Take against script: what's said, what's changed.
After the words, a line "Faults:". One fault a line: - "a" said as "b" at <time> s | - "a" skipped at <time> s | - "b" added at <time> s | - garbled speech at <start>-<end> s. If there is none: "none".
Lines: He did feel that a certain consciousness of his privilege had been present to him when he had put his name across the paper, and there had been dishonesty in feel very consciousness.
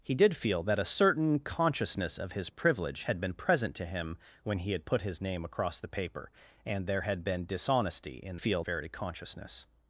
He did feel that a certain consciousness of his privilege had been present to him when he had put his name across the paper, and there had been dishonesty in feel very consciousness.
Faults:
none